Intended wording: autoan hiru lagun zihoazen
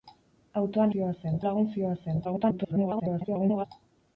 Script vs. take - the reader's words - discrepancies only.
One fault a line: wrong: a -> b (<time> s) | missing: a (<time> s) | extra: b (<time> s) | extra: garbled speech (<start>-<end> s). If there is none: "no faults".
wrong: hiru -> zihoazen (0.9 s)
extra: garbled speech (2.2-3.7 s)